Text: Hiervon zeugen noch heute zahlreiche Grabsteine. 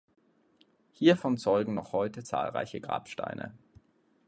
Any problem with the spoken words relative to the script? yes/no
no